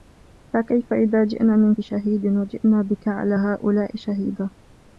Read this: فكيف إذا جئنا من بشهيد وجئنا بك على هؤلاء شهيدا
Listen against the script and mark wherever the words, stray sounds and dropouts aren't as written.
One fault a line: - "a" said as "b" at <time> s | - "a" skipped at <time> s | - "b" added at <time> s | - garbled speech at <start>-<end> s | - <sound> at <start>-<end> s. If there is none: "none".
none